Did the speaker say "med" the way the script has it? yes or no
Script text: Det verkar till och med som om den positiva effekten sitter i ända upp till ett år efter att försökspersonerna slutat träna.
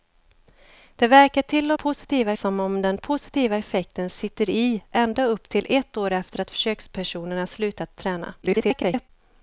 no